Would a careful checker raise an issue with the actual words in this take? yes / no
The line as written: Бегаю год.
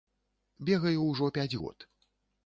yes